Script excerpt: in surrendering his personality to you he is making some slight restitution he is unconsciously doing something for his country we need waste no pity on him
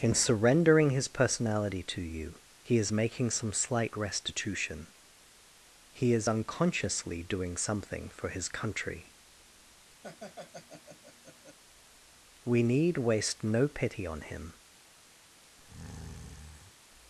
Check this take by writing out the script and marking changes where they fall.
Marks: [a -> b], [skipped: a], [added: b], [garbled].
in surrendering his personality to you he is making some slight restitution he is unconsciously doing something for his country we need waste no pity on him